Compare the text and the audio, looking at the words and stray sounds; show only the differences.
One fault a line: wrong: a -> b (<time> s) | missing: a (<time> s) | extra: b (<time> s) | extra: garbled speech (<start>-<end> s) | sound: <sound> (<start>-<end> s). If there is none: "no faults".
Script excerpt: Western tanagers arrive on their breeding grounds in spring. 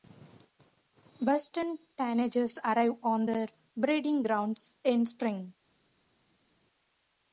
no faults